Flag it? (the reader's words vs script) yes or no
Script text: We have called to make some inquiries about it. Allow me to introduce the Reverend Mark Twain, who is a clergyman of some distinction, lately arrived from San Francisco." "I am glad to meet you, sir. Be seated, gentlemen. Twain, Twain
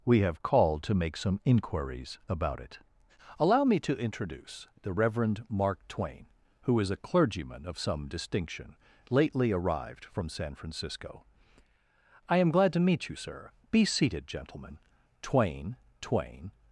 no